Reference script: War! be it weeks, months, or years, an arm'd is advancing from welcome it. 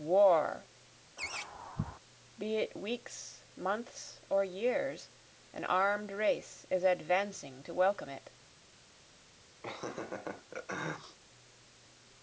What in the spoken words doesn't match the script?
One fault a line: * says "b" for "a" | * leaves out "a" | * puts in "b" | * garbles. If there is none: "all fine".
* puts in "race"
* says "to" for "from"